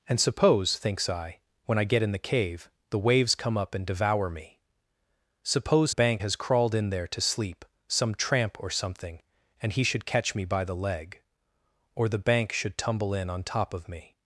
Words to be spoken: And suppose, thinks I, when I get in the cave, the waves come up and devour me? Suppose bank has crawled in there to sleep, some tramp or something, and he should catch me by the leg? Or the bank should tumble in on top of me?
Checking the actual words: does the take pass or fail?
pass